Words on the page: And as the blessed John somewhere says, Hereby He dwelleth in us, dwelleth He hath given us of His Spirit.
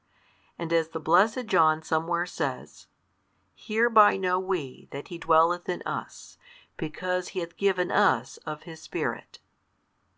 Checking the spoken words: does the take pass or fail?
fail